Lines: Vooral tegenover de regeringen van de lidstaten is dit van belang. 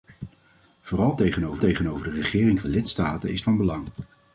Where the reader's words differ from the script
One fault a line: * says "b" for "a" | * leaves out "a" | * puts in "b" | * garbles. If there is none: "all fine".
* puts in "tegenover"
* leaves out "van"
* leaves out "dit"